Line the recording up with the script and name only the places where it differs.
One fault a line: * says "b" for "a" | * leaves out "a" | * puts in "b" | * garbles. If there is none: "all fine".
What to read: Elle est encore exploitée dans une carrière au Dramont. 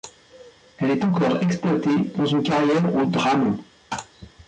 all fine